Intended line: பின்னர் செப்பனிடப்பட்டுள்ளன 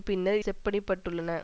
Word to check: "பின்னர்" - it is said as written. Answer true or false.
true